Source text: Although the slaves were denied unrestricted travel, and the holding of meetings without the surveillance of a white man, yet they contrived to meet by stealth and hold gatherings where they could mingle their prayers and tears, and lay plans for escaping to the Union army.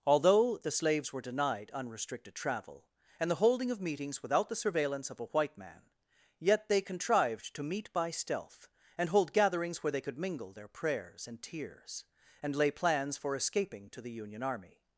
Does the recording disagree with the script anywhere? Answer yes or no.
no